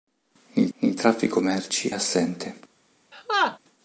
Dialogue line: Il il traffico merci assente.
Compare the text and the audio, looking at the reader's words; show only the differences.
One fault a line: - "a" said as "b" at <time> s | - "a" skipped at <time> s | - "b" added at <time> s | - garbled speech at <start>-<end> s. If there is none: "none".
none